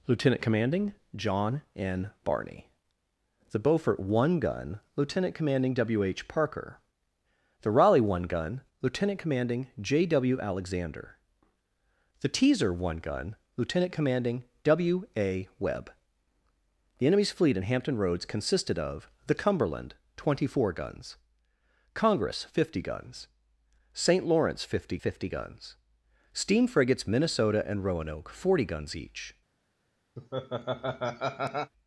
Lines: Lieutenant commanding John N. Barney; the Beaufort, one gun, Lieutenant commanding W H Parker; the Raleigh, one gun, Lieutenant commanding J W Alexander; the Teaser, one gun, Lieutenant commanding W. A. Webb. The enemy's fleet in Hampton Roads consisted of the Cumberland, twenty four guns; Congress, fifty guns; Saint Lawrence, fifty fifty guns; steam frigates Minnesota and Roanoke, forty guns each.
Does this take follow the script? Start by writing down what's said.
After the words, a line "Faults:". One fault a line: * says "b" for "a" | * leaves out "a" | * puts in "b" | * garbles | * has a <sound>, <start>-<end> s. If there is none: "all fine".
Lieutenant commanding John N. Barney; the Beaufort, one gun, Lieutenant commanding W H Parker; the Raleigh, one gun, Lieutenant commanding J W Alexander; the Teaser, one gun, Lieutenant commanding W. A. Webb. The enemy's fleet in Hampton Roads consisted of the Cumberland, twenty four guns; Congress, fifty guns; Saint Lawrence, fifty fifty guns; steam frigates Minnesota and Roanoke, forty guns each.
Faults:
* has a laugh, 30.2-31.7 s